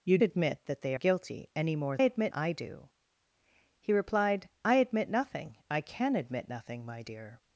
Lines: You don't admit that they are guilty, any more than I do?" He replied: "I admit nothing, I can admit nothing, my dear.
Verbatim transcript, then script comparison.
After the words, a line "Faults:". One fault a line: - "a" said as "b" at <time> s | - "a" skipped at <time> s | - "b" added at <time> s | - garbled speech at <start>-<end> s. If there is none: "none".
You admit that they guilty, any more admit I do?" He replied: "I admit nothing, I can admit nothing, my dear.
Faults:
- "don't" skipped at 0.2 s
- "are" skipped at 0.9 s
- "than" said as "admit" at 2.0 s